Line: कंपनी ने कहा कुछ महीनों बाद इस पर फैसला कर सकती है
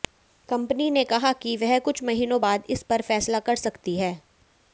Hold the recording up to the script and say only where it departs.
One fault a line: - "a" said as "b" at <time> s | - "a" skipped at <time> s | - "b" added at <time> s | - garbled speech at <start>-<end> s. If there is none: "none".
- "कि वह" added at 1.4 s